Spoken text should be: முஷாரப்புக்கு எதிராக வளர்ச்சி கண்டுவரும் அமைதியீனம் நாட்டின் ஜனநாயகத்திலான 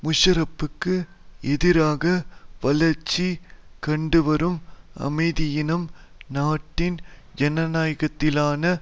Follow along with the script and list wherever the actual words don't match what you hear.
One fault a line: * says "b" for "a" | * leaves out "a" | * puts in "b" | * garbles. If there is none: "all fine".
all fine